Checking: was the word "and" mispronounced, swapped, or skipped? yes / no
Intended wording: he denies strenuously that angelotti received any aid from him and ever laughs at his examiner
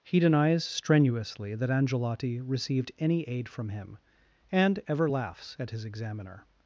no